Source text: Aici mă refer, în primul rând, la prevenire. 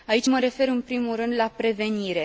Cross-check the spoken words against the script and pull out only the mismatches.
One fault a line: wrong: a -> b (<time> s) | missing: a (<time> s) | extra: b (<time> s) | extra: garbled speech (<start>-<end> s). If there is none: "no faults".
no faults